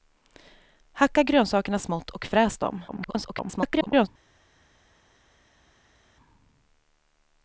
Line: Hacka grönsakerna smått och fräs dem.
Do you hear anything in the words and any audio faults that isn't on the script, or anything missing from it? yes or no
yes